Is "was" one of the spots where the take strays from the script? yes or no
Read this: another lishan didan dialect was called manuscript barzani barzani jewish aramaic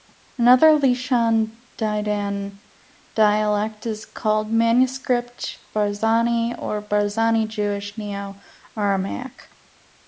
yes